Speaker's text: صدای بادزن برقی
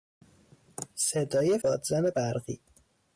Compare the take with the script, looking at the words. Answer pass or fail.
pass